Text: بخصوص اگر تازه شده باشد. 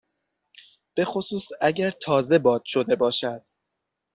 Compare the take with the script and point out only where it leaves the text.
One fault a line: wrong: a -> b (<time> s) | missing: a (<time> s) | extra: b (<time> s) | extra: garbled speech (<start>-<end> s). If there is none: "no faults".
extra: باد (2.4 s)